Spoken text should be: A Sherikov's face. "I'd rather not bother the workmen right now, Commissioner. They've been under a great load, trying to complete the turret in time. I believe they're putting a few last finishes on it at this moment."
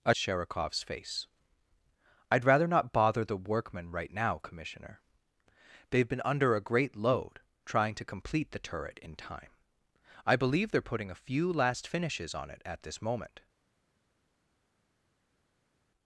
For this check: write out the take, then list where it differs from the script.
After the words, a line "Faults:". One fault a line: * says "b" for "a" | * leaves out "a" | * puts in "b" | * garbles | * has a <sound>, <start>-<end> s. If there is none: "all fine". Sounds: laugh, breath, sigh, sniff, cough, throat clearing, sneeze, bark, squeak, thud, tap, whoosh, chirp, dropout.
A Sherikov's face. "I'd rather not bother the workmen right now, Commissioner. They've been under a great load, trying to complete the turret in time. I believe they're putting a few last finishes on it at this moment."
Faults:
all fine